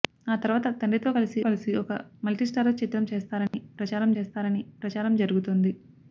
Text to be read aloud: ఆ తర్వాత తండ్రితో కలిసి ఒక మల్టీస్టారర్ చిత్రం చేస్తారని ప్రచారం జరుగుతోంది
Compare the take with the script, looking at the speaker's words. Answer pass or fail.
fail